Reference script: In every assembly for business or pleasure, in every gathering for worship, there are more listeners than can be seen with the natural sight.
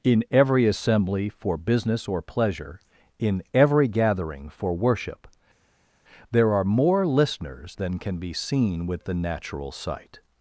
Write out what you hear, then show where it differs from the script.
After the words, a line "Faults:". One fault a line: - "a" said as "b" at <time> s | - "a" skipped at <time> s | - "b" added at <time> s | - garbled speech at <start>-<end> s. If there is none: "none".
In every assembly for business or pleasure, in every gathering for worship, there are more listeners than can be seen with the natural sight.
Faults:
none